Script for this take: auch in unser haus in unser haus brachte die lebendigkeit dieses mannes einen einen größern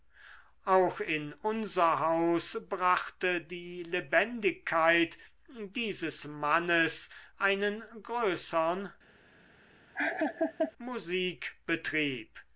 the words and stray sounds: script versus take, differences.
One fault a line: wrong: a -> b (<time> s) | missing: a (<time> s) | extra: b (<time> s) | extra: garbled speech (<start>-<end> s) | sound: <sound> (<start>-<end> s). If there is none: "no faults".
missing: in unser haus (2.6 s)
missing: einen (7.8 s)
sound: laugh (9.9-10.7 s)